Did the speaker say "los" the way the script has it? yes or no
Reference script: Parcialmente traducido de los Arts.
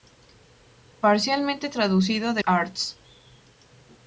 no